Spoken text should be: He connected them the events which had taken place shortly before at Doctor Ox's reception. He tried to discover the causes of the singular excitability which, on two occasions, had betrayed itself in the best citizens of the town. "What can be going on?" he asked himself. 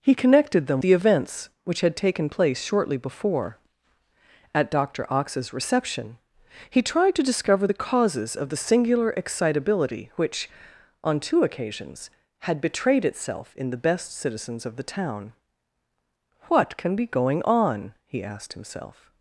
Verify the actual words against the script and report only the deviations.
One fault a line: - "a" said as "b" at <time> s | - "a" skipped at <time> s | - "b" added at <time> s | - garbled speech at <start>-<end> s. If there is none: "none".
none